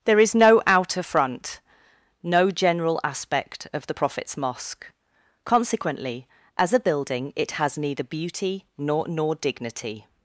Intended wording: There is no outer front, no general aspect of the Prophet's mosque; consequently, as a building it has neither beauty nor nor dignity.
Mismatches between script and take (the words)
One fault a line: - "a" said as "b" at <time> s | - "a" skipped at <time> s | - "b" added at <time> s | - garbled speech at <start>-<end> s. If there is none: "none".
none